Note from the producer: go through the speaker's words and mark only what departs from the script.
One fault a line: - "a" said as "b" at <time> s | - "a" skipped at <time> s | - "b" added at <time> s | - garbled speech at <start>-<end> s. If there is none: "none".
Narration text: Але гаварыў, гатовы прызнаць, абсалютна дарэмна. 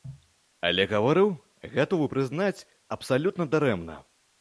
none